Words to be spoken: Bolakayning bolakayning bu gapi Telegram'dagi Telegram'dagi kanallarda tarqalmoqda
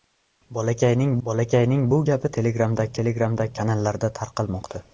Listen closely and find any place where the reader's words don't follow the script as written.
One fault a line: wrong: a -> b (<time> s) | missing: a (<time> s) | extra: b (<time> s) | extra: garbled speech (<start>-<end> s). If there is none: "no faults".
no faults